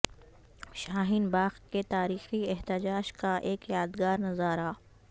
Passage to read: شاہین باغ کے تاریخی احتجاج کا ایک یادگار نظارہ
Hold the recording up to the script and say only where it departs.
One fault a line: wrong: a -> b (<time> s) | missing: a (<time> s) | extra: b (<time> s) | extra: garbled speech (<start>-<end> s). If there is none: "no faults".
no faults